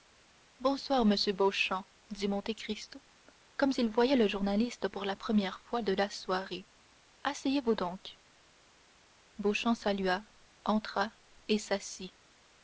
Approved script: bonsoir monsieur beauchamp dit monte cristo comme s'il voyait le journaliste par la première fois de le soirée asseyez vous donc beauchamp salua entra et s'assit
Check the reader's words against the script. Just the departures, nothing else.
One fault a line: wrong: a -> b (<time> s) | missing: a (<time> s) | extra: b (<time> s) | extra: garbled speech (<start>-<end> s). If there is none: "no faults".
wrong: par -> pour (4.9 s)
wrong: le -> la (5.9 s)